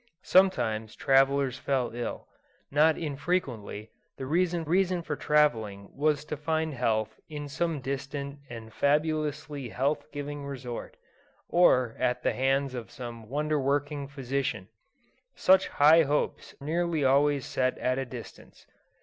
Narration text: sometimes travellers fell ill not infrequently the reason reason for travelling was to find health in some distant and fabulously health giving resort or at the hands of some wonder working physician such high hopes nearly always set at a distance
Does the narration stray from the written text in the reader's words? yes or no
no